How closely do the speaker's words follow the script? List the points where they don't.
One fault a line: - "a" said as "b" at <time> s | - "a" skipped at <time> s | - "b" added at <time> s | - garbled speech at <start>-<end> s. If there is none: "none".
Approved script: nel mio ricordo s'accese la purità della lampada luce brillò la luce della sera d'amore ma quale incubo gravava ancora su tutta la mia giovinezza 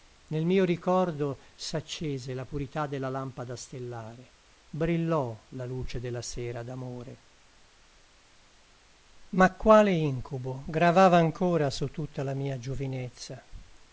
- "luce" said as "stellare" at 3.5 s